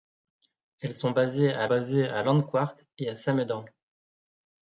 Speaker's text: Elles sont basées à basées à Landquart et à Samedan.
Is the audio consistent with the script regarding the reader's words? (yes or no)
yes